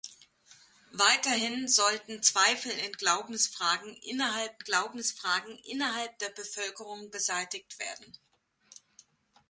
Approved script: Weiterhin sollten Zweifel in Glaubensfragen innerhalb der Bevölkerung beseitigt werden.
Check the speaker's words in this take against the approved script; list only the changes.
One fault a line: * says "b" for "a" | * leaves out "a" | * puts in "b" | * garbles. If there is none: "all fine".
* puts in "Glaubensfragen innerhalb"